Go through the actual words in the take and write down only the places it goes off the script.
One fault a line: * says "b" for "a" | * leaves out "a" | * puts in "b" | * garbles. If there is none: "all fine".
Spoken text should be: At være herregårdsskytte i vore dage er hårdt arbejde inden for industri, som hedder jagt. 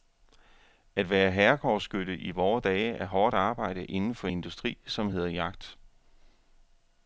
all fine